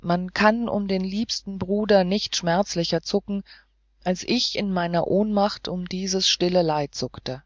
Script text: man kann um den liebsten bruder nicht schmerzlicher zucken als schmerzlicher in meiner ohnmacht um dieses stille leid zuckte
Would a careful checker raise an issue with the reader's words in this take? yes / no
yes